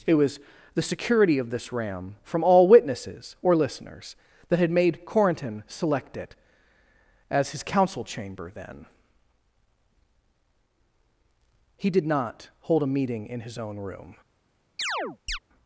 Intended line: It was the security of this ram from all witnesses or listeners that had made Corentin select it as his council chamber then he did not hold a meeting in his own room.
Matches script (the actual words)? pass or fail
pass